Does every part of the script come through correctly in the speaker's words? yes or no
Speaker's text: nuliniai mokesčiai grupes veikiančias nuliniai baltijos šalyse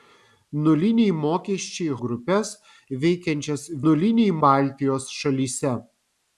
yes